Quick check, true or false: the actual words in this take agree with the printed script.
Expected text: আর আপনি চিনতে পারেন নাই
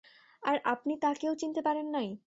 false